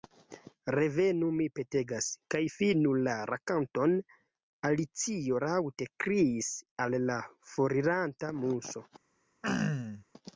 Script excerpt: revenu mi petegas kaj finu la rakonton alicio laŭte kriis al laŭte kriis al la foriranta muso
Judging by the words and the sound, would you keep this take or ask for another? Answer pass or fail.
fail